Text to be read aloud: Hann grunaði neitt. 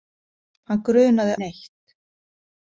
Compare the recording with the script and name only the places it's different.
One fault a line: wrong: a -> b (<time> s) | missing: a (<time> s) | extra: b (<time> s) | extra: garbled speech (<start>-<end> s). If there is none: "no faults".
no faults